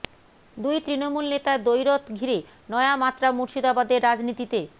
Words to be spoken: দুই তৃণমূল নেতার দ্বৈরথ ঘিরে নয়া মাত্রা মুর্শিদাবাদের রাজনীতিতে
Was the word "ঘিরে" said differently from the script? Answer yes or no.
no